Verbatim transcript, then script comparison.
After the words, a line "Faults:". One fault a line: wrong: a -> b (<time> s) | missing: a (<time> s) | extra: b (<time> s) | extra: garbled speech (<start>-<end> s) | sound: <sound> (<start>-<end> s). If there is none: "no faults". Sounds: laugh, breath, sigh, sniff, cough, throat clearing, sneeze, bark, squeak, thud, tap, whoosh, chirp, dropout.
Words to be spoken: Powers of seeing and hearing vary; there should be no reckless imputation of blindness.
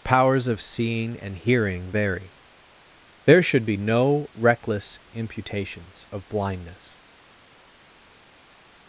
Powers of seeing and hearing vary; there should be no reckless imputations of blindness.
Faults:
wrong: imputation -> imputations (5.1 s)